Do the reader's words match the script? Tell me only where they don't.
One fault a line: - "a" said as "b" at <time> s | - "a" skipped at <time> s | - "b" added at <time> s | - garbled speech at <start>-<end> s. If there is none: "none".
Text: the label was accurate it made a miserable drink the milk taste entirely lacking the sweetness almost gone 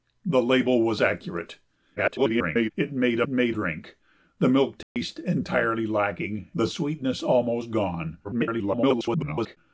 - garbled speech at 2.0-2.7 s
- "miserable" said as "made" at 3.3 s
- garbled speech at 8.2-9.6 s